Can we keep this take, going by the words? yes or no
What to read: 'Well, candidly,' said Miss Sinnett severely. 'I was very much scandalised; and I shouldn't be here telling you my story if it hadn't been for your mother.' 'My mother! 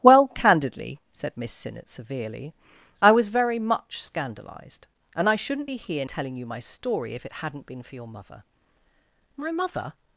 yes